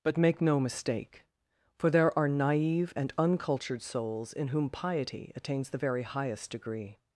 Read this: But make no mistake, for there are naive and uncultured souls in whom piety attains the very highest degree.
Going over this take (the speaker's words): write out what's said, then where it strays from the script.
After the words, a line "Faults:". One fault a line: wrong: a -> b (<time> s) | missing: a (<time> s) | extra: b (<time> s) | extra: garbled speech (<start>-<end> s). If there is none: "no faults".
But make no mistake, for there are naive and uncultured souls in whom piety attains the very highest degree.
Faults:
no faults